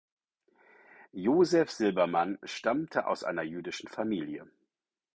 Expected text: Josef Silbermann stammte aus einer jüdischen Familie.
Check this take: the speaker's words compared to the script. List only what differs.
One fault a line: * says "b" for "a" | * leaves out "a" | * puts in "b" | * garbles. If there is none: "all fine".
all fine